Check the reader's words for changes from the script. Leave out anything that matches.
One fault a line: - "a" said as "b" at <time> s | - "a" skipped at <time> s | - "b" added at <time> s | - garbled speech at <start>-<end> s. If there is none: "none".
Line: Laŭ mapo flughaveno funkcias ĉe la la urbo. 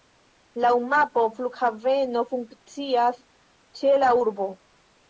- "la" skipped at 4.2 s